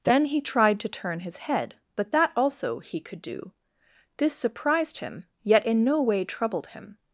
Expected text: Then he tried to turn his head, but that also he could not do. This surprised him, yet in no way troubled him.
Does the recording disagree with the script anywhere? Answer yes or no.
yes